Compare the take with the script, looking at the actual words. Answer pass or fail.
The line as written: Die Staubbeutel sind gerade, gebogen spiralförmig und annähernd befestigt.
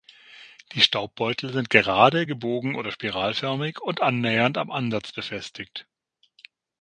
fail